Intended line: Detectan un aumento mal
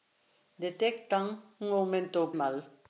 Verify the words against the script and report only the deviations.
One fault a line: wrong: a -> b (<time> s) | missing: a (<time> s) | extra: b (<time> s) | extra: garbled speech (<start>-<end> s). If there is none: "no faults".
no faults